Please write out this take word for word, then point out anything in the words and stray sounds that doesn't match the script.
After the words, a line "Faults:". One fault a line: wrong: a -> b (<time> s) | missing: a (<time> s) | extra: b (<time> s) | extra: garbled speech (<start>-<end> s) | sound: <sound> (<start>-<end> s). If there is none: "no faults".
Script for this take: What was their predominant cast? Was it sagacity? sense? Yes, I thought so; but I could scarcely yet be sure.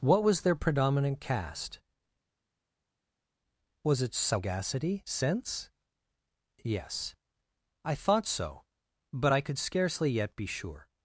What was their predominant cast? Was it sagacity? sense? Yes, I thought so; but I could scarcely yet be sure.
Faults:
no faults